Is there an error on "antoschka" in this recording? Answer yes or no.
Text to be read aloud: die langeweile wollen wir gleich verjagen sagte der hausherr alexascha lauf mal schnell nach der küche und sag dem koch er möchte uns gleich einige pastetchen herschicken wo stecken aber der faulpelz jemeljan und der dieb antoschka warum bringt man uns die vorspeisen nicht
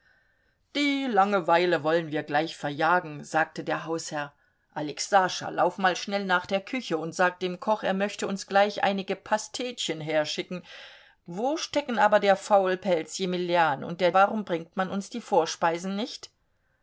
yes